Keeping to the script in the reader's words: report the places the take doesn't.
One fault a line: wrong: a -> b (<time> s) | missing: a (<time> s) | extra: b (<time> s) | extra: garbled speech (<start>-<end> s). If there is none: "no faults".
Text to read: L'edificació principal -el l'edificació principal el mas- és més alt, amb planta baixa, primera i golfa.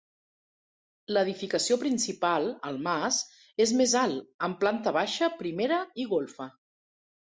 missing: l'edificació principal el (2.8 s)